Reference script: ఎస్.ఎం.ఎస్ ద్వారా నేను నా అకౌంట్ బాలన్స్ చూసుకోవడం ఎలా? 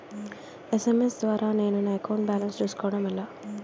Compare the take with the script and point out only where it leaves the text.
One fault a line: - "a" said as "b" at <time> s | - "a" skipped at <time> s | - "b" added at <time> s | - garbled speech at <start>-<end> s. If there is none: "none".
none